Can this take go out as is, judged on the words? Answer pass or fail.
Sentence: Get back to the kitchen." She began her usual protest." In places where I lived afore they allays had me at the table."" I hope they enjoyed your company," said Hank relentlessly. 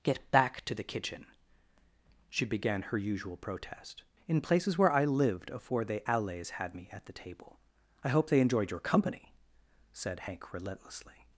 pass